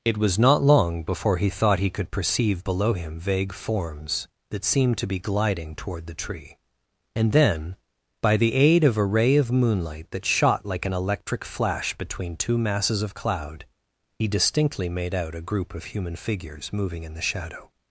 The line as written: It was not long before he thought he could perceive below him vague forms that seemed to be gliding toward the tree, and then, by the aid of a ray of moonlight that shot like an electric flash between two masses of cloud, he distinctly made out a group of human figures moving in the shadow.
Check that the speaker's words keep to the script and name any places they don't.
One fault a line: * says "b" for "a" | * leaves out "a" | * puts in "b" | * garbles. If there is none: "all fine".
all fine